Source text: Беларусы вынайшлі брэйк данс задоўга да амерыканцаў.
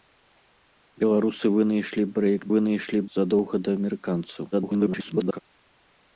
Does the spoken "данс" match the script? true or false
false